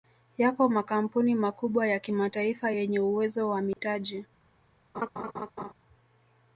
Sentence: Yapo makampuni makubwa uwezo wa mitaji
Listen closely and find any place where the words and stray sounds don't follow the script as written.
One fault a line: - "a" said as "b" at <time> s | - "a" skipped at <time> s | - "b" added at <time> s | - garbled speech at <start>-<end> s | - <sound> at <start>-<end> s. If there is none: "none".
- "ya kimataifa yenye" added at 1.9 s
- dropout at 3.7-3.8 s
- laugh at 4.9-5.7 s